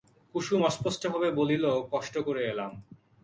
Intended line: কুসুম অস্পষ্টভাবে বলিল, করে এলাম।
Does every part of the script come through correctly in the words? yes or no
no